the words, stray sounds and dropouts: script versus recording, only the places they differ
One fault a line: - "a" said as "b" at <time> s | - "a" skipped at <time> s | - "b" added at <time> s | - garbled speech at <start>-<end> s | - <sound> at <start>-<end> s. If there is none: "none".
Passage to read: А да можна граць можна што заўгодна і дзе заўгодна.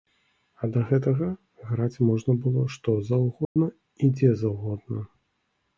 - "можна" said as "гэтага" at 0.9 s
- "было" added at 2.5 s
- dropout at 3.4-3.6 s